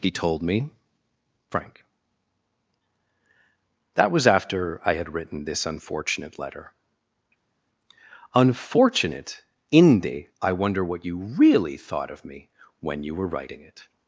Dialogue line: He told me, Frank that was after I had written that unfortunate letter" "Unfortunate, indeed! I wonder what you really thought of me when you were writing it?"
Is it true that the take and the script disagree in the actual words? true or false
true